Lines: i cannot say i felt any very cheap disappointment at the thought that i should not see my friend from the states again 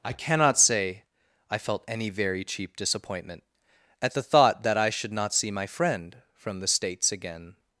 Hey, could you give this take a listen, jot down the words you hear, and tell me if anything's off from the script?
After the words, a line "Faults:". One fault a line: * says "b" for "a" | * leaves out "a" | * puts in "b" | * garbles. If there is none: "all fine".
i cannot say i felt any very cheap disappointment at the thought that i should not see my friend from the states again
Faults:
all fine